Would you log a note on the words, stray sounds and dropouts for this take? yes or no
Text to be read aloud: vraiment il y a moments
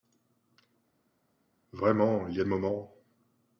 no